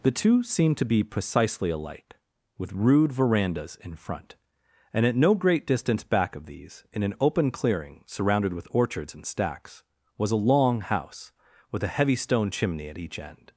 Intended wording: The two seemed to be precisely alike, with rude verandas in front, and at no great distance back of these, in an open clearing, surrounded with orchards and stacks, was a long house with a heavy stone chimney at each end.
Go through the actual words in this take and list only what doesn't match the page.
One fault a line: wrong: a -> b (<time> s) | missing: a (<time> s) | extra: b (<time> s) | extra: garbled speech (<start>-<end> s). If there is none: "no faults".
no faults